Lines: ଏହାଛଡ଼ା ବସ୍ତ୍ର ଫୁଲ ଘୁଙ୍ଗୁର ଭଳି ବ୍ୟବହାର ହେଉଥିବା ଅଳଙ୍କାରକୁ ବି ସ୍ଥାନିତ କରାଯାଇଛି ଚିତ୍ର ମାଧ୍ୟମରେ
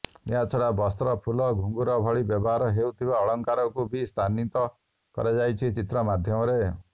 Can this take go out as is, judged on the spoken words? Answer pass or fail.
pass